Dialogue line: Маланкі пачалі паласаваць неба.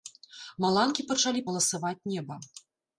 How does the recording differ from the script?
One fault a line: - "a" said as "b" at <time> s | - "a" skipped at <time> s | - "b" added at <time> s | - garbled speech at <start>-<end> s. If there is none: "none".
none